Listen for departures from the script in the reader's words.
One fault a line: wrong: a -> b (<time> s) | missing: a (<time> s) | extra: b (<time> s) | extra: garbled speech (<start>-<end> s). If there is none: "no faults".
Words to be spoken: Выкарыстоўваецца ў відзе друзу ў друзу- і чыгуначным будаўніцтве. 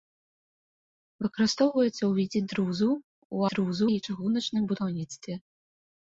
no faults